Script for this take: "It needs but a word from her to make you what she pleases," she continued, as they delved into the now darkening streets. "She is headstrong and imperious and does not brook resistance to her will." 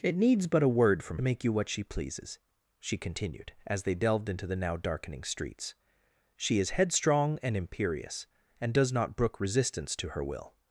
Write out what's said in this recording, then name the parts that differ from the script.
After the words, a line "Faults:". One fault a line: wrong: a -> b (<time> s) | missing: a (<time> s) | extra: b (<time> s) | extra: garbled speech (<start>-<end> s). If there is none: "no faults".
"It needs but a word from make you what she pleases," she continued, as they delved into the now darkening streets. "She is headstrong and imperious and does not brook resistance to her will."
Faults:
missing: her to (1.2 s)